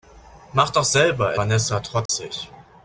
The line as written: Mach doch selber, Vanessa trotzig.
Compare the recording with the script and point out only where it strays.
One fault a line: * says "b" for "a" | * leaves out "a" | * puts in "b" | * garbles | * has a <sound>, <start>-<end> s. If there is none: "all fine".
* has a dropout, 2.1-2.1 s